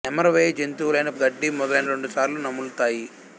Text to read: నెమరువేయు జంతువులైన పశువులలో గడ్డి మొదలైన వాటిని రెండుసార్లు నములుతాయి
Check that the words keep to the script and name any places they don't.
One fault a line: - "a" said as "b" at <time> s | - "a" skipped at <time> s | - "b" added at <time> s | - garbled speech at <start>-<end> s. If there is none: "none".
- "పశువులలో" skipped at 1.1 s
- "వాటిని" skipped at 1.9 s